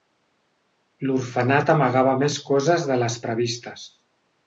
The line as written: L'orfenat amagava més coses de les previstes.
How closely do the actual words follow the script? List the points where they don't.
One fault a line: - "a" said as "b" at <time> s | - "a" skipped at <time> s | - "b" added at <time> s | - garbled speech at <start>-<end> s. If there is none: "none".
none